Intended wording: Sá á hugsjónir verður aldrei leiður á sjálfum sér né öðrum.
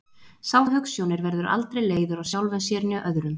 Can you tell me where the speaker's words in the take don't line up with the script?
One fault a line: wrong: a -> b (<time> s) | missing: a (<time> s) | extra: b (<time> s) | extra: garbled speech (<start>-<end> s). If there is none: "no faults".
no faults